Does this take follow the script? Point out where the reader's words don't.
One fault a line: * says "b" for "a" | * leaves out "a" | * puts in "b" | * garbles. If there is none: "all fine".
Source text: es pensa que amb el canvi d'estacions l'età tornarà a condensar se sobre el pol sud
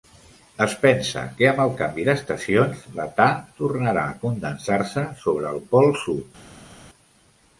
all fine